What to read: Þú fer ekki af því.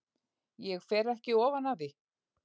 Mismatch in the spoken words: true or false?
true